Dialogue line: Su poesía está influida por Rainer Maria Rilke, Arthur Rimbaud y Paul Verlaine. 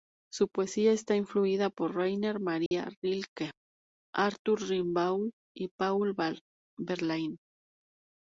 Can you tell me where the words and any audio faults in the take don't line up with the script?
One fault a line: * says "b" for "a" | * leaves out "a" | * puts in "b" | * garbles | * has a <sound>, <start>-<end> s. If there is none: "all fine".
* has a dropout, 2.7-2.7 s